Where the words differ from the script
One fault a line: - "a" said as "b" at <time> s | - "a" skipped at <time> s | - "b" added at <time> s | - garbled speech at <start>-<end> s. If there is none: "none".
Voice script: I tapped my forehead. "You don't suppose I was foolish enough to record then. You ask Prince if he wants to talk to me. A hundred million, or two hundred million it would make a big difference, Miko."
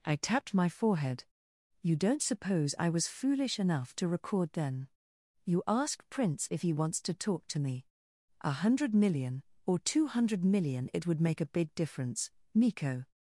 none